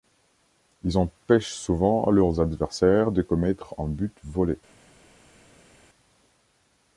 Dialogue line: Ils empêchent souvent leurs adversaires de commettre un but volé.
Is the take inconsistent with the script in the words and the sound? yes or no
no